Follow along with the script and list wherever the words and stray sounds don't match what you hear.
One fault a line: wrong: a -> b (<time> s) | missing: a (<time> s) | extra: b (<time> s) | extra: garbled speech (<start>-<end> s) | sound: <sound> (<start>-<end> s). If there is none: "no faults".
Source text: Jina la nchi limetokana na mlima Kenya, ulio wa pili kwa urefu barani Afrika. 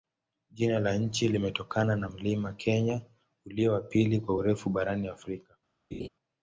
sound: laugh (5.9-6.1 s)